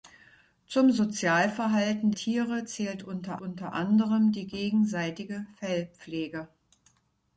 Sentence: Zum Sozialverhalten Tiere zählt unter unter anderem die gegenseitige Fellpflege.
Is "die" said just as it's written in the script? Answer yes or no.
yes